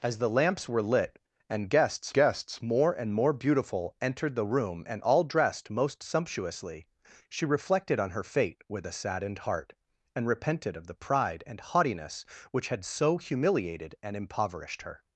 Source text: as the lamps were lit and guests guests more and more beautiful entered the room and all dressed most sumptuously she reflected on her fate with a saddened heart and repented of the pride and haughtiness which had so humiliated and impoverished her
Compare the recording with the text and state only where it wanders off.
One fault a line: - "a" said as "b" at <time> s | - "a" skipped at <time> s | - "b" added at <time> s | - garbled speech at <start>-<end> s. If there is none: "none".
none